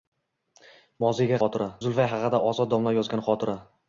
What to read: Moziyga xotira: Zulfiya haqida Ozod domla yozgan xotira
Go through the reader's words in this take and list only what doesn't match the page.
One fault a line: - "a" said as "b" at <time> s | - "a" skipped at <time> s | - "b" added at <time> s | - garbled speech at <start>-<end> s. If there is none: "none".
none